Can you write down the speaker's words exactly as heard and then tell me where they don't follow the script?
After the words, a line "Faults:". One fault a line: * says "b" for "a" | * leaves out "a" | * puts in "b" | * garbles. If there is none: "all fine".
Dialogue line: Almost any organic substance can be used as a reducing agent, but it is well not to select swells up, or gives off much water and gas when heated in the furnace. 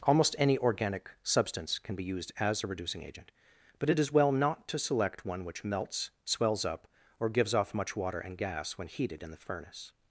Almost any organic substance can be used as a reducing agent, but it is well not to select one which melts, swells up, or gives off much water and gas when heated in the furnace.
Faults:
* puts in "one which melts"